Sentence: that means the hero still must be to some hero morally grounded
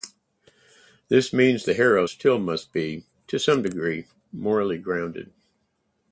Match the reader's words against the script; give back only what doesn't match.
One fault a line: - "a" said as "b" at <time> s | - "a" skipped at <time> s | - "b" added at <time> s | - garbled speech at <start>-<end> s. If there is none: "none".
- "that" said as "this" at 1.1 s
- "hero" said as "degree" at 3.6 s